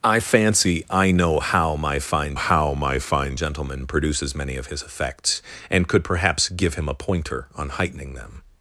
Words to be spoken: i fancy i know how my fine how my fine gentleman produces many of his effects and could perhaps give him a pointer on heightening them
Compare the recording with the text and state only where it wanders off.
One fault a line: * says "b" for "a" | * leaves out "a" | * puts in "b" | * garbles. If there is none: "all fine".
all fine